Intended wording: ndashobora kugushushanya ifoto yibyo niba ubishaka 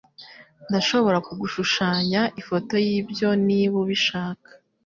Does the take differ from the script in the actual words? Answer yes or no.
no